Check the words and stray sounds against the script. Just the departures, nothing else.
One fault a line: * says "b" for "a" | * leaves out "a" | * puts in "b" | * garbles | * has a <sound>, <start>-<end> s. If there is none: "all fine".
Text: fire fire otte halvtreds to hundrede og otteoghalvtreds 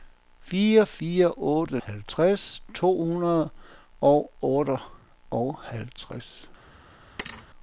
* has a thud, 7.2-7.5 s